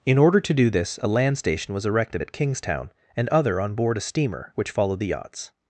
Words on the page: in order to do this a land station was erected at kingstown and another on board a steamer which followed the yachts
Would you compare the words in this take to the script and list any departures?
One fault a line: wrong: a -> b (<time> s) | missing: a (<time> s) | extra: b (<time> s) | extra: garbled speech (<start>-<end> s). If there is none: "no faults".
wrong: another -> other (3.3 s)